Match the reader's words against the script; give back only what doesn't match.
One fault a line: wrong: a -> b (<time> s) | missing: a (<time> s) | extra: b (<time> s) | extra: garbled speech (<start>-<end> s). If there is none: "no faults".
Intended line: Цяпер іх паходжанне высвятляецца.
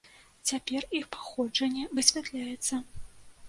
no faults